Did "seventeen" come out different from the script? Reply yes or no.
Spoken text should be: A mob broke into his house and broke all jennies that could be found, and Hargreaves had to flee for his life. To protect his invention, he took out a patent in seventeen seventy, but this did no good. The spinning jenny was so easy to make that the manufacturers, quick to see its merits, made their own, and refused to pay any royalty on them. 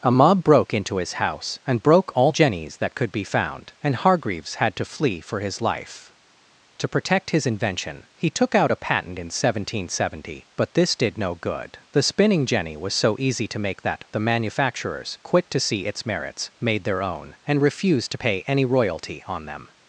no